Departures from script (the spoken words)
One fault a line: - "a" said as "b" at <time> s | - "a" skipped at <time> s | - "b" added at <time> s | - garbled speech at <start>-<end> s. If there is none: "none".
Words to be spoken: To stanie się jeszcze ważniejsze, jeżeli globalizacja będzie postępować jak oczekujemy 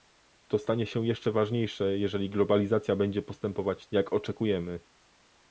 none